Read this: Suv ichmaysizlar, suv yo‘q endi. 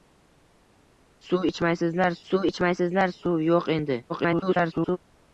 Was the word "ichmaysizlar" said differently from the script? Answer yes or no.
no